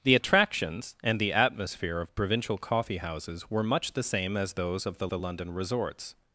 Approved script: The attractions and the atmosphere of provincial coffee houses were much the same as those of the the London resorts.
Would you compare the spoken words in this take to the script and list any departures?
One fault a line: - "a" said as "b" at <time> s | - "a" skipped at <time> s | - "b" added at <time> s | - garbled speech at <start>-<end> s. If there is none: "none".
none